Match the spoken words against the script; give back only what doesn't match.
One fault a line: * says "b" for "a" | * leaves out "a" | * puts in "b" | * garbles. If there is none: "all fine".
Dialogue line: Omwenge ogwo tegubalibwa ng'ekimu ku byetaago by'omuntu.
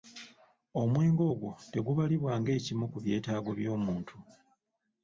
all fine